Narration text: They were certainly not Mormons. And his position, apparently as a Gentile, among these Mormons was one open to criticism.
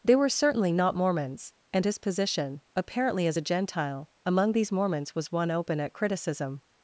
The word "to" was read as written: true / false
false